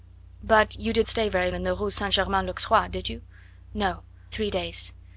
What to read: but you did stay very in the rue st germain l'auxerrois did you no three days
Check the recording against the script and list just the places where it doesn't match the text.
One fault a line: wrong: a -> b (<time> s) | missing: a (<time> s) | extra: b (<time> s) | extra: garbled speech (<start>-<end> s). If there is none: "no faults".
no faults